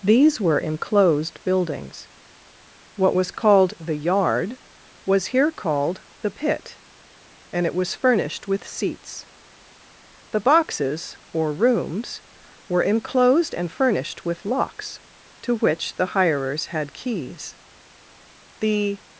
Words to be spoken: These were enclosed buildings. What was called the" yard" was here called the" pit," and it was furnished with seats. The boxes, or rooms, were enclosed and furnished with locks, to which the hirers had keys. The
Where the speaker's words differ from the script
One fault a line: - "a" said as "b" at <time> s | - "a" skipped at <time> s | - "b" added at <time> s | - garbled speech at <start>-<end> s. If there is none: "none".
none